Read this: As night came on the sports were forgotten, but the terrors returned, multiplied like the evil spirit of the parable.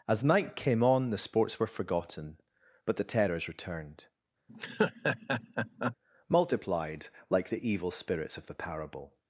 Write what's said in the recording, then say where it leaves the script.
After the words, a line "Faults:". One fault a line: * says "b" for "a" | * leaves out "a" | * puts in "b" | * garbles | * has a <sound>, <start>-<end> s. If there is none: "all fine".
As night came on the sports were forgotten, but the terrors returned, multiplied like the evil spirits of the parable.
Faults:
* has a laugh, 4.5-6.0 s
* says "spirits" for "spirit"